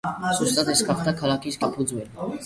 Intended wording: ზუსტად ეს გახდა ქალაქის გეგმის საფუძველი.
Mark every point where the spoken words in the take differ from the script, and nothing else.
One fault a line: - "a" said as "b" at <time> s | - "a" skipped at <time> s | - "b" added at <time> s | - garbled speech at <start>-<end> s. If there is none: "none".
- "გეგმის" skipped at 1.6 s